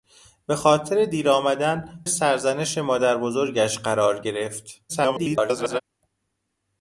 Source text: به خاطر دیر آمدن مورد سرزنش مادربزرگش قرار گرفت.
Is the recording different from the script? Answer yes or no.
yes